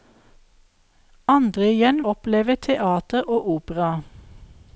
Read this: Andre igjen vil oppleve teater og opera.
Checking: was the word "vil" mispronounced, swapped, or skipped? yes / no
yes